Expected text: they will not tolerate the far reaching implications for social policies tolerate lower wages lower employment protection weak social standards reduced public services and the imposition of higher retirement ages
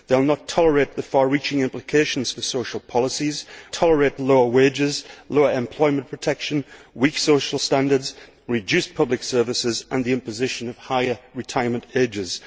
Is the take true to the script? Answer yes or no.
yes